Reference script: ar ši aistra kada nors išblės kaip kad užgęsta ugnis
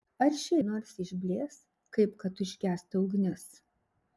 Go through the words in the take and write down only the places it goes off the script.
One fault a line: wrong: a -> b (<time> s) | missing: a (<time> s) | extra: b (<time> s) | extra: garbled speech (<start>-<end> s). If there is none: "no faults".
missing: aistra kada (0.6 s)